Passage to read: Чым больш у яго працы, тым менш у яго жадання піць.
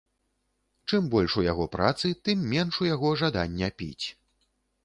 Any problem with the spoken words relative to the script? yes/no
no